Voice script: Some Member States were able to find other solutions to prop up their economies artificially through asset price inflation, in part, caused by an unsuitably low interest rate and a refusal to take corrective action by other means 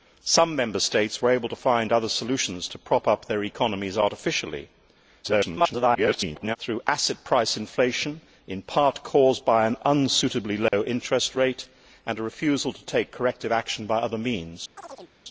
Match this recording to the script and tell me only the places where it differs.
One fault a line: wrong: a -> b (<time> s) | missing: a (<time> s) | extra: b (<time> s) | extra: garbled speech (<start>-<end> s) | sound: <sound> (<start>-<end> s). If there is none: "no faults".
extra: garbled speech (5.2-6.6 s)
sound: dropout (10.7-10.7 s)
sound: chirp (14.8-15.1 s)